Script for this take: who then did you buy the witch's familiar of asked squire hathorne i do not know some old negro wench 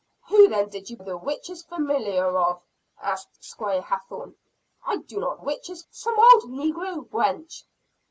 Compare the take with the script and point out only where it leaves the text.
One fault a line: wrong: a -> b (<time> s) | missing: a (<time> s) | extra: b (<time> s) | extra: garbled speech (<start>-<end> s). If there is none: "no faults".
missing: buy (1.0 s)
wrong: know -> witch's (5.4 s)